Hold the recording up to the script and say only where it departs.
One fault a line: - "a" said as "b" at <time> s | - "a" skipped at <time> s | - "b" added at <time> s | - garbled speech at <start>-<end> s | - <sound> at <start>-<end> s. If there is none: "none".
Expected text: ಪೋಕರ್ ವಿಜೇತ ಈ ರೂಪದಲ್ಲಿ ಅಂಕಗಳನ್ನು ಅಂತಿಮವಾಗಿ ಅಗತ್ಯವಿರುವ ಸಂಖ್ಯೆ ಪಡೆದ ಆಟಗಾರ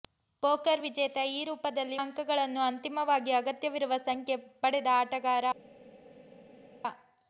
none